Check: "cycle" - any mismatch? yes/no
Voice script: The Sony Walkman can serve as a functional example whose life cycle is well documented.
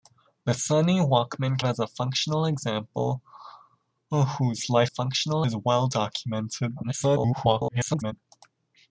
yes